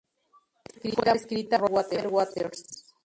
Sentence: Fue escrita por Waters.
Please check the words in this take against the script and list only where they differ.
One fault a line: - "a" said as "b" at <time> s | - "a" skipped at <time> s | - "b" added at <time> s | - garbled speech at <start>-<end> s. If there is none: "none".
none